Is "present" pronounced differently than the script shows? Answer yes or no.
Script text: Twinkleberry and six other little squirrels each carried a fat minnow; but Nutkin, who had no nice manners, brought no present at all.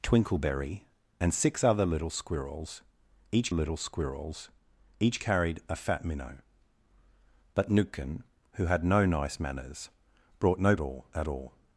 yes